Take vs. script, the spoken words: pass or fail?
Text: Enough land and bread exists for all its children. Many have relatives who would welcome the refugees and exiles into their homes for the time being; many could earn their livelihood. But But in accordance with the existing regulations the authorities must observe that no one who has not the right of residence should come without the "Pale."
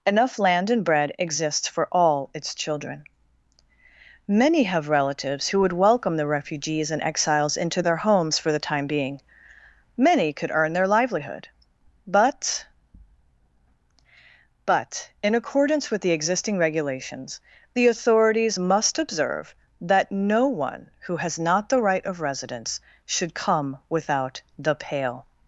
pass